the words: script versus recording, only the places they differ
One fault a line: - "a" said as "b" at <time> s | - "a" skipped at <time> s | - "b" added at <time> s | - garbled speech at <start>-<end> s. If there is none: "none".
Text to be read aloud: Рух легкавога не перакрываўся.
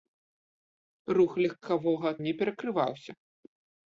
none